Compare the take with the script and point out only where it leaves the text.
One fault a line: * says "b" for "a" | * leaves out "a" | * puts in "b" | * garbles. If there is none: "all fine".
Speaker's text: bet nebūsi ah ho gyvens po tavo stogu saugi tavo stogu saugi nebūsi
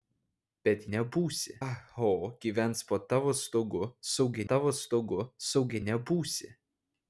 all fine